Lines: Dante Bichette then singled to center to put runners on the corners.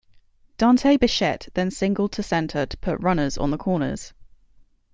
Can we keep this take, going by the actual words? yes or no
yes